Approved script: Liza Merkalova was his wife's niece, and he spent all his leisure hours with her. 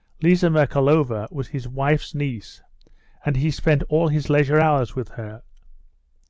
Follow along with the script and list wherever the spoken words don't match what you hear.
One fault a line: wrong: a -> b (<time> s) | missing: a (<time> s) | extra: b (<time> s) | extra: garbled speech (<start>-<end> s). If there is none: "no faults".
no faults